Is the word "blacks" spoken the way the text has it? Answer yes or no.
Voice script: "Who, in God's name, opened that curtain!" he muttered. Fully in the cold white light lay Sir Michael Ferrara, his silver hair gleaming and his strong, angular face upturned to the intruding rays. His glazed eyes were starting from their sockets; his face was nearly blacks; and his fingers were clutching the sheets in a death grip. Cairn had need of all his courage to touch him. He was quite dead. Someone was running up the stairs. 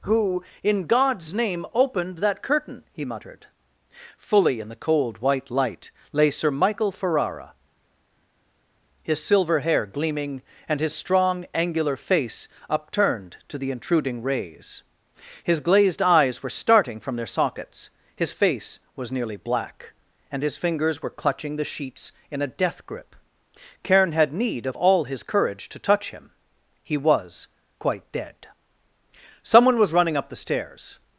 no